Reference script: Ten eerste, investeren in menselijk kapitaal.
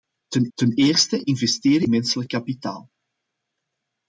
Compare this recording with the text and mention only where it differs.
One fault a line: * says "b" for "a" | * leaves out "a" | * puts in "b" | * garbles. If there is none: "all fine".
* puts in "ten"
* leaves out "in"